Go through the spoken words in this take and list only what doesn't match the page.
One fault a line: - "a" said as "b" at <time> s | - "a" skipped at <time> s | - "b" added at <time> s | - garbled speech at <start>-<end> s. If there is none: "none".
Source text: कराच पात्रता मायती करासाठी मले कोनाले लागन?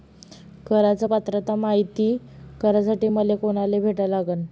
- "भेटा" added at 3.8 s